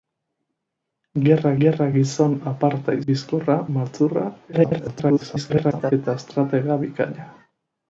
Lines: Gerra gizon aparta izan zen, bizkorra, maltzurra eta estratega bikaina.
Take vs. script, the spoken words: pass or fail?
fail